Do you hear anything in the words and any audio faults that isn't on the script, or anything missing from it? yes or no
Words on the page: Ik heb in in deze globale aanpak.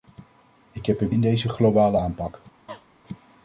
yes